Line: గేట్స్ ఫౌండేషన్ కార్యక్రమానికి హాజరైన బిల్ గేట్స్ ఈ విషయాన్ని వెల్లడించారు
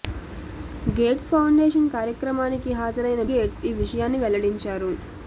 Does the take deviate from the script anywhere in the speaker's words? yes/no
yes